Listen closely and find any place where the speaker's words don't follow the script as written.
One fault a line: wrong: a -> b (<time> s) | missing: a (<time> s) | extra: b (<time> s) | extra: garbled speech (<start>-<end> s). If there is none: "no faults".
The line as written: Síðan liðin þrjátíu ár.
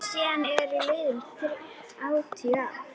extra: eru (0.5 s)